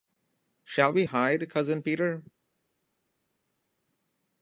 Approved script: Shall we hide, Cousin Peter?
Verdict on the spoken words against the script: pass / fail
pass